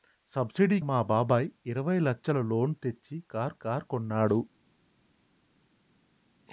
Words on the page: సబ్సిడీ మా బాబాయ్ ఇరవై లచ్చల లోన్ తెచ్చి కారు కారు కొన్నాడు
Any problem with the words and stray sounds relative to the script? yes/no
no